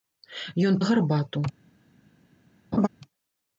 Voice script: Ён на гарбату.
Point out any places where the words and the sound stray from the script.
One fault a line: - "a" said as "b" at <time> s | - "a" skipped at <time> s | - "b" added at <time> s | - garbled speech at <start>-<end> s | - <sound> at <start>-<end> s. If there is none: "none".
- laugh at 2.7-2.9 s